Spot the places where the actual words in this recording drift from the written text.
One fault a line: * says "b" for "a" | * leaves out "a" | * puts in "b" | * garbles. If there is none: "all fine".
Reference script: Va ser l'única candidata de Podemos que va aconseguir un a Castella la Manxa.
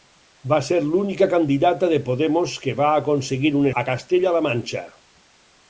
all fine